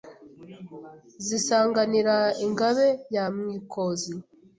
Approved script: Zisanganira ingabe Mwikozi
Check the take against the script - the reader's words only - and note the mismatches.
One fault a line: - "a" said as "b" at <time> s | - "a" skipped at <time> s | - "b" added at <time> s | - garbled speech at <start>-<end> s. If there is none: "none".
- "ya" added at 3.1 s